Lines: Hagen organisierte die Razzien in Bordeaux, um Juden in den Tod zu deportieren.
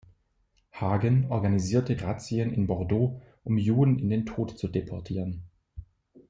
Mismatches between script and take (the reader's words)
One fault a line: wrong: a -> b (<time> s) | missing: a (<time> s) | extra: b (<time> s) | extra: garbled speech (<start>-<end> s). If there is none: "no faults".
missing: die (1.9 s)